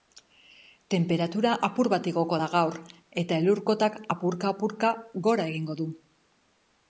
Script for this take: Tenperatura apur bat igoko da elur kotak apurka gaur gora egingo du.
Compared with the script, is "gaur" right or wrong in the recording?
wrong